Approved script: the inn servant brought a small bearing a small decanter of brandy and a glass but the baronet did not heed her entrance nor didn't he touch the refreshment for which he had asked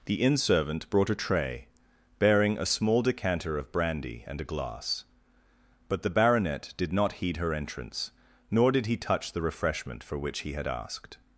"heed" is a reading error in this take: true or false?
false